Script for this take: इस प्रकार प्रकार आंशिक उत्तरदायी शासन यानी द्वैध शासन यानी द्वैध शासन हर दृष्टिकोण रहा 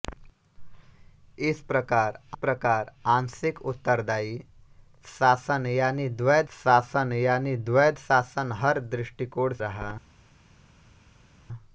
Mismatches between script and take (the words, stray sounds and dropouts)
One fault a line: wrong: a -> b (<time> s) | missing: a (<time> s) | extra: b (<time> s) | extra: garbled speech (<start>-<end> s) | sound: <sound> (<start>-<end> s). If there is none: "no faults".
no faults